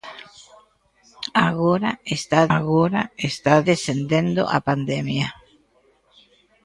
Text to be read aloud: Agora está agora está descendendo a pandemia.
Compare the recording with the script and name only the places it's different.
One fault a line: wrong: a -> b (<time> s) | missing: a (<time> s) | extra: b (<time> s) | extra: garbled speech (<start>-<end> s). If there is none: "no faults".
no faults